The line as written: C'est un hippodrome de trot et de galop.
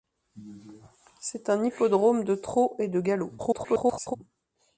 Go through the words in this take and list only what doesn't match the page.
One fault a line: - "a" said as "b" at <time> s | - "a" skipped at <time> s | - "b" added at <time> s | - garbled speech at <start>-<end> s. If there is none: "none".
- garbled speech at 3.4-4.2 s